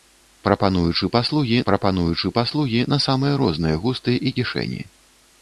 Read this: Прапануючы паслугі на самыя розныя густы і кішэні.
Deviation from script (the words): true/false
true